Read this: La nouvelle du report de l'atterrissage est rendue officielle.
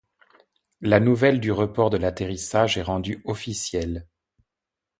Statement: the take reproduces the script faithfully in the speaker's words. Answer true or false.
true